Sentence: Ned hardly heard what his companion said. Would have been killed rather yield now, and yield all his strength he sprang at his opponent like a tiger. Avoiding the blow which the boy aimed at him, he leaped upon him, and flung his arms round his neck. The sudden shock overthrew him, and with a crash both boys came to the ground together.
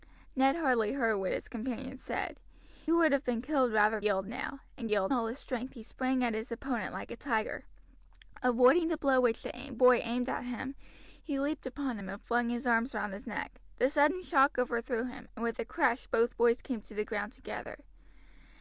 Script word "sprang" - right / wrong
right